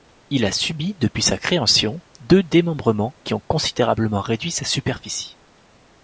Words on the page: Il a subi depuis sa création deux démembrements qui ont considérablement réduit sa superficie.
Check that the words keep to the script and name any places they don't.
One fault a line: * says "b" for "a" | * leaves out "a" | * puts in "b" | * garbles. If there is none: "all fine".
all fine